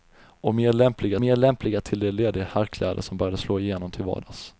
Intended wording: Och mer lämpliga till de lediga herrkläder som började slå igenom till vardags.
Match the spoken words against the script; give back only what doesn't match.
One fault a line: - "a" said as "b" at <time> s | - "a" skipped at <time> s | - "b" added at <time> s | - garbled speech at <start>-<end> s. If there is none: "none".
- "mer lämpliga" added at 1.2 s